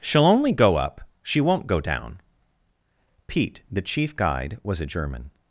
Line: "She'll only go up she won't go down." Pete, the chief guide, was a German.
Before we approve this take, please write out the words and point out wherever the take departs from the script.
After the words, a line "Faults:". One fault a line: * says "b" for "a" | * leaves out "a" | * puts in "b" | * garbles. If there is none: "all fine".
"She'll only go up she won't go down." Pete, the chief guide, was a German.
Faults:
all fine